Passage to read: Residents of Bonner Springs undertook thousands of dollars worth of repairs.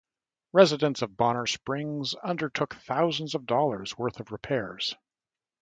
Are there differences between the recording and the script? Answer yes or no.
no